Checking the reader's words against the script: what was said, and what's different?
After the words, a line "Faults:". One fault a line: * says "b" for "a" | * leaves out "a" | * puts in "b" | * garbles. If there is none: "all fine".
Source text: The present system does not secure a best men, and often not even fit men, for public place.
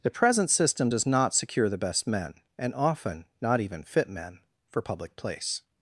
The present system does not secure the best men, and often not even fit men, for public place.
Faults:
* says "the" for "a"